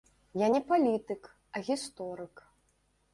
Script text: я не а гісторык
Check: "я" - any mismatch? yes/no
no